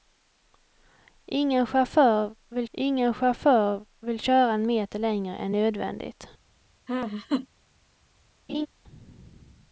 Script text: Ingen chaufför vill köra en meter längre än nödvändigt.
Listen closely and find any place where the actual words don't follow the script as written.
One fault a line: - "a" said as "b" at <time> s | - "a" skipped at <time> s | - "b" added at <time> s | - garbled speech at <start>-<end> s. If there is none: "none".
- "ingen chaufför vill" added at 2.7 s